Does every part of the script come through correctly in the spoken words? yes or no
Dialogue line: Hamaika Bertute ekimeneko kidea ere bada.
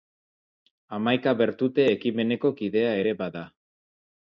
yes